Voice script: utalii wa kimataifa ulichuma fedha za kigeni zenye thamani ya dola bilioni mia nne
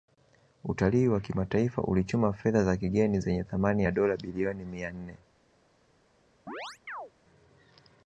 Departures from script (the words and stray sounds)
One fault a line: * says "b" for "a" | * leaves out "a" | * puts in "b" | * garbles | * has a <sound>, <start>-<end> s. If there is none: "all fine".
* has a chirp, 6.5-7.1 s